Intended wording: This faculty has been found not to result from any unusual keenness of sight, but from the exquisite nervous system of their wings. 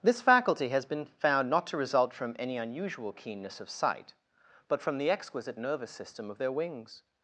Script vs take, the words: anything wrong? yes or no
no